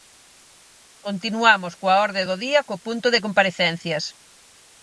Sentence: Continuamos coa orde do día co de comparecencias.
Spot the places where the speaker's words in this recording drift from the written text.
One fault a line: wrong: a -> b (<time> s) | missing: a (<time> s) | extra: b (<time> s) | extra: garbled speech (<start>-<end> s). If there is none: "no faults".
extra: punto (2.9 s)